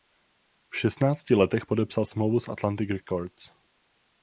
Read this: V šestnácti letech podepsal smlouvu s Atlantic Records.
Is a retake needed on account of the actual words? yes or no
no